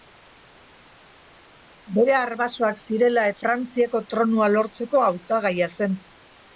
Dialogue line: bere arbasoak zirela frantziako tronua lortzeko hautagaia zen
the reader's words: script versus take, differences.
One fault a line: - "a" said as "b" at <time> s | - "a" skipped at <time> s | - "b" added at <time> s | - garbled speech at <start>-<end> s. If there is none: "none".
none